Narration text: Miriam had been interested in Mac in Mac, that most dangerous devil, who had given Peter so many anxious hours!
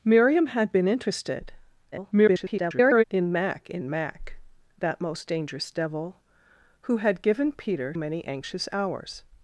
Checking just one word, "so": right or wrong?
wrong